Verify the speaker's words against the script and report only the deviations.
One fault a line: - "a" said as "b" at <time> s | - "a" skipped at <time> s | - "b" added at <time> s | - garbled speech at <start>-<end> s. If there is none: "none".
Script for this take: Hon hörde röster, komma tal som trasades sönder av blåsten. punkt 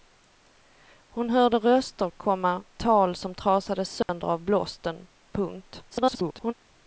- garbled speech at 5.9-6.5 s